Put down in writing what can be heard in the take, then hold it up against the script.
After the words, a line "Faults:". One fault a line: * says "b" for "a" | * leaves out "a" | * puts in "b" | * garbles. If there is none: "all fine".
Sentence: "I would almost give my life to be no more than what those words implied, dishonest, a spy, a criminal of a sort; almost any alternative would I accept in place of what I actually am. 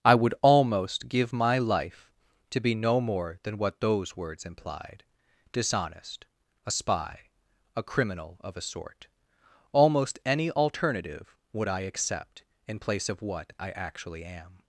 "I would almost give my life to be no more than what those words implied, dishonest, a spy, a criminal of a sort; almost any alternative would I accept in place of what I actually am.
Faults:
all fine